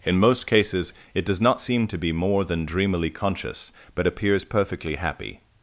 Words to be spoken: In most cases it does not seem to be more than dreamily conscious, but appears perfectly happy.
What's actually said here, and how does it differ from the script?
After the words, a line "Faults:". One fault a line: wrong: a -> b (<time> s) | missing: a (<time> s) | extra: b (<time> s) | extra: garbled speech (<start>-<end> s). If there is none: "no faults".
In most cases it does not seem to be more than dreamily conscious, but appears perfectly happy.
Faults:
no faults